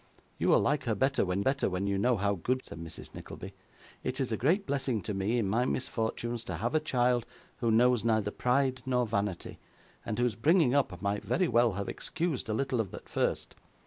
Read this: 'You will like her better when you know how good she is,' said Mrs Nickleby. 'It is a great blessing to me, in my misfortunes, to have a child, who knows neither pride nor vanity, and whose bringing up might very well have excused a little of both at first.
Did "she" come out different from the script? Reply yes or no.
yes